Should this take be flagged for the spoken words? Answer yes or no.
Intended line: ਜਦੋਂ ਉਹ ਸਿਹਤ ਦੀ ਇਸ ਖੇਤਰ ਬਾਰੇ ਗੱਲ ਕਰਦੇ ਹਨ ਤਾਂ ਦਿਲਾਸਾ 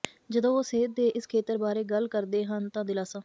yes